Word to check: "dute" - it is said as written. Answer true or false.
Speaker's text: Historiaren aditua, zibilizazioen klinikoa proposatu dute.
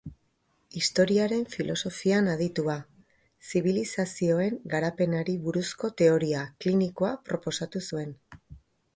false